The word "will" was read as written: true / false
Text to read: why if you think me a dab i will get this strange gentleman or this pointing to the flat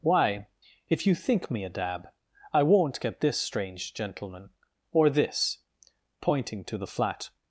false